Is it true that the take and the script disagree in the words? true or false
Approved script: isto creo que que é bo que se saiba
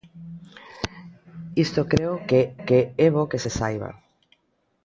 false